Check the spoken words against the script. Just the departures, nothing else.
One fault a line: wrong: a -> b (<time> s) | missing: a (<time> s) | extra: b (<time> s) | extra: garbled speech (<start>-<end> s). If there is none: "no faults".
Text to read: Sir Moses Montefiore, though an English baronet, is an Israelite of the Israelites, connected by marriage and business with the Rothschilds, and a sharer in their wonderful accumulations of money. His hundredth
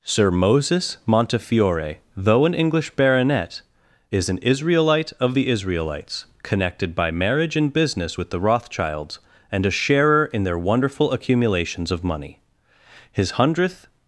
no faults